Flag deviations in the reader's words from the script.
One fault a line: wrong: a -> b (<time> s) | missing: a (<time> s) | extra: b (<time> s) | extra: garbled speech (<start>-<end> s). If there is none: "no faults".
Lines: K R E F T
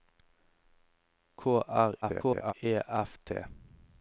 extra: garbled speech (2.0-2.5 s)